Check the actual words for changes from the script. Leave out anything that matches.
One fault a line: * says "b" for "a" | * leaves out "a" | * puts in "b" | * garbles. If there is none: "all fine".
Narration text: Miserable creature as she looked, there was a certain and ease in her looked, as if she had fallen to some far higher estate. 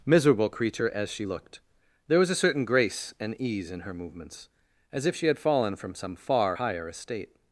* puts in "grace"
* says "movements" for "looked"
* says "from" for "to"